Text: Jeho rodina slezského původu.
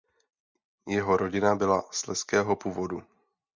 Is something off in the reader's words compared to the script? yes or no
yes